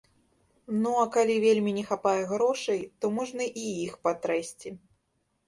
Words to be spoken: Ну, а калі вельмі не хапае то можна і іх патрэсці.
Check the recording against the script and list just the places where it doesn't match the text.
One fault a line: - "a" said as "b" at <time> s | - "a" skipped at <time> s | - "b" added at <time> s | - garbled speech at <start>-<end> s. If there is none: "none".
- "грошай" added at 2.3 s